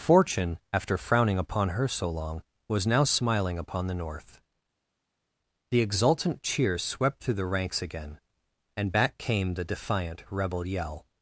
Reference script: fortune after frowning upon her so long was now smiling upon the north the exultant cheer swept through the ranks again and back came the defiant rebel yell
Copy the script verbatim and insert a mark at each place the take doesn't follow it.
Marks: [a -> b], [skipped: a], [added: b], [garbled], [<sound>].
fortune after frowning upon her so long was now smiling upon the north the exultant cheer swept through the ranks again and back came the defiant rebel yell